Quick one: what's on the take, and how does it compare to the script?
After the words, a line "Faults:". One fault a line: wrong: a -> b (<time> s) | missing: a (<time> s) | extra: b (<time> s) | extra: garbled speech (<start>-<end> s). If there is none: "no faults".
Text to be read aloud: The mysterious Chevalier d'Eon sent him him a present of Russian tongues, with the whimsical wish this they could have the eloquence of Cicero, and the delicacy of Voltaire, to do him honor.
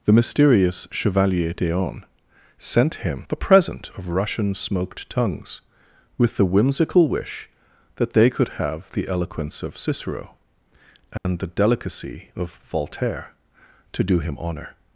The mysterious Chevalier d'Eon sent him a present of Russian smoked tongues, with the whimsical wish that they could have the eloquence of Cicero, and the delicacy of Voltaire, to do him honor.
Faults:
missing: him (3.3 s)
extra: smoked (4.5 s)
wrong: this -> that (8.0 s)